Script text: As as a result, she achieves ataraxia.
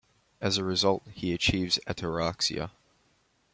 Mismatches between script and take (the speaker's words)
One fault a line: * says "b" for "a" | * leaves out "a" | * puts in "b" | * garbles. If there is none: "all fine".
* leaves out "as"
* says "he" for "she"